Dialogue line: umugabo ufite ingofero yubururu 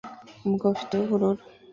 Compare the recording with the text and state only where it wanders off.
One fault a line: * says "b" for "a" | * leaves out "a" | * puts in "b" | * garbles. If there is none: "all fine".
* leaves out "ingofero"